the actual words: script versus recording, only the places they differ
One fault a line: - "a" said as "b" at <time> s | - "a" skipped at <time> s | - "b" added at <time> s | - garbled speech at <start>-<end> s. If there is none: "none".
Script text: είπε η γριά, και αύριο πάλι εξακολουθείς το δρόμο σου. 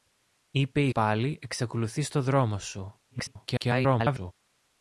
- "γριά και αύριο" skipped at 0.9 s
- garbled speech at 3.1-4.3 s